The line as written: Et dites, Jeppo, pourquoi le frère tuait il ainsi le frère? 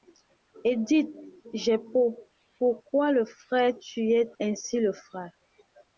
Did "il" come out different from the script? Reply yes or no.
yes